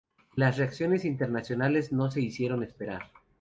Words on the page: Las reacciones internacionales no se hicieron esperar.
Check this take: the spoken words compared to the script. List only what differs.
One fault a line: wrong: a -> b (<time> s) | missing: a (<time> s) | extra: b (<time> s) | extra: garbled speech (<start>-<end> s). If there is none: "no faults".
no faults